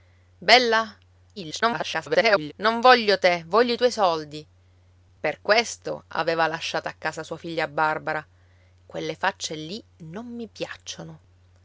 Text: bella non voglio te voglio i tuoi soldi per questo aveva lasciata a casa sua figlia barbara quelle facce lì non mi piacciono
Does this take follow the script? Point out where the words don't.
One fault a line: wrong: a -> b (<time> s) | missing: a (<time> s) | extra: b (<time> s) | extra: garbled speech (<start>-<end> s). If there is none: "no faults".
extra: garbled speech (1.4-2.5 s)